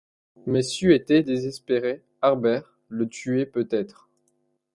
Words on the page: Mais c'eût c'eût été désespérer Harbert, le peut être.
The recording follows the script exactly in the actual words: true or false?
false